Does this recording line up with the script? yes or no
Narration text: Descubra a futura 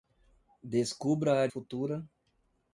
yes